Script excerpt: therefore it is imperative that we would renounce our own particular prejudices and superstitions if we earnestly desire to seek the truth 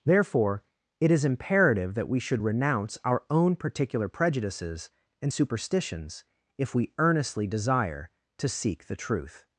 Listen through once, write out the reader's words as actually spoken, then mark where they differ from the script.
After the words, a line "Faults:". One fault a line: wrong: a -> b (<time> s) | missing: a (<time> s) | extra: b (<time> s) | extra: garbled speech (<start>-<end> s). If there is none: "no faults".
therefore it is imperative that we should renounce our own particular prejudices and superstitions if we earnestly desire to seek the truth
Faults:
wrong: would -> should (2.2 s)